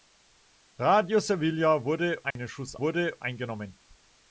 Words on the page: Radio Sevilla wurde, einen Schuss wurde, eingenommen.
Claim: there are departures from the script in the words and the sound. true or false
true